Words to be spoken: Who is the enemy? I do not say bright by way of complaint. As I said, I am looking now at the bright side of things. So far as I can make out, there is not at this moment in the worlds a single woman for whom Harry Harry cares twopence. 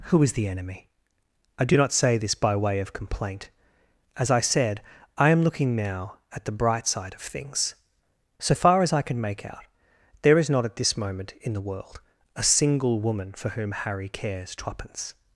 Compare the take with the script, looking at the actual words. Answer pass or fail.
fail